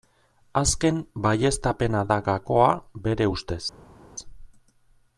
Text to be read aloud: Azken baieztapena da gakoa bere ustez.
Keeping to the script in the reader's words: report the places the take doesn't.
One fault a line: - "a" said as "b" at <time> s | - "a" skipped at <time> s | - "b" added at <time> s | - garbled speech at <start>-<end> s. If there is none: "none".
none